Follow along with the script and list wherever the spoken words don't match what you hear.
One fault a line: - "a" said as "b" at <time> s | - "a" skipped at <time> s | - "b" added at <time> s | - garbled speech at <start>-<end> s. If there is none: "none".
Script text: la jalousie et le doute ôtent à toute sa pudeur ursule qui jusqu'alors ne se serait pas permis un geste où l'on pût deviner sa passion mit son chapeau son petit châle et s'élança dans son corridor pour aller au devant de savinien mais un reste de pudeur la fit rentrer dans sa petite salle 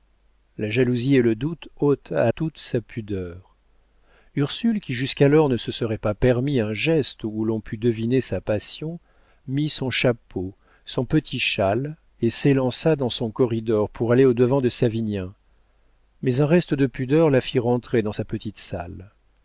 none